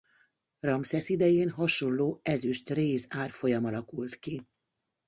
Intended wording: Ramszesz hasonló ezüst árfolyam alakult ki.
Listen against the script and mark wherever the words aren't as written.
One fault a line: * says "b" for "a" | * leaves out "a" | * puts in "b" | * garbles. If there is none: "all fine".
* puts in "idején"
* puts in "réz"